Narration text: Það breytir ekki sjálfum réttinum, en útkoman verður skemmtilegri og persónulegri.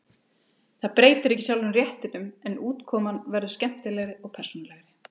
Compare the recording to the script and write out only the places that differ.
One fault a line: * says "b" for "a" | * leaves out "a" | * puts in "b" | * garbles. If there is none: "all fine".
all fine